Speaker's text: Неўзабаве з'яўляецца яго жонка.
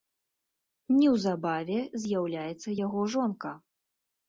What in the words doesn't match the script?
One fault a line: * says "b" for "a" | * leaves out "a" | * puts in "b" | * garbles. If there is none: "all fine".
all fine